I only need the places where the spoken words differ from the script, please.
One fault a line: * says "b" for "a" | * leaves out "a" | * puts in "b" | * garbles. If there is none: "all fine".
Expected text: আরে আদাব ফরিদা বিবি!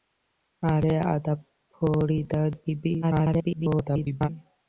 * garbles